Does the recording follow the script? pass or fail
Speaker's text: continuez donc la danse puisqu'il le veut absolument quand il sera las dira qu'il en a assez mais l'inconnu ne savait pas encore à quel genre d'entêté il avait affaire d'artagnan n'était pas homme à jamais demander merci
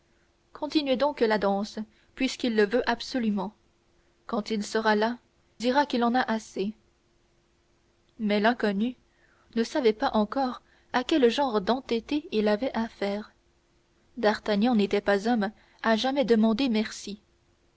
pass